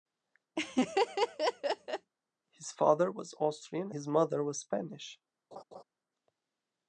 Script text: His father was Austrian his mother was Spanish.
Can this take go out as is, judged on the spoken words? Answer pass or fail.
pass